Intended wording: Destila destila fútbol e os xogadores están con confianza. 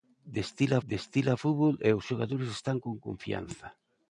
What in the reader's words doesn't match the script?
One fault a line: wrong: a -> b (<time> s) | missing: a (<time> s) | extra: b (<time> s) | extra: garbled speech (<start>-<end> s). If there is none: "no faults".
no faults